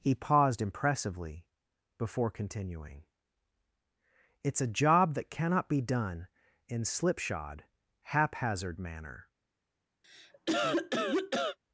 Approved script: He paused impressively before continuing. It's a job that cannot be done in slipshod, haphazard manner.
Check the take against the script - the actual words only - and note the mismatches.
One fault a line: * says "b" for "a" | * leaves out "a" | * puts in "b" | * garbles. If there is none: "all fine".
all fine